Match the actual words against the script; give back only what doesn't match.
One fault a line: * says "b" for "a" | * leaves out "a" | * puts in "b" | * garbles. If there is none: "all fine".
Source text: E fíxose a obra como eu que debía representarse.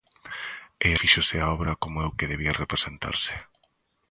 all fine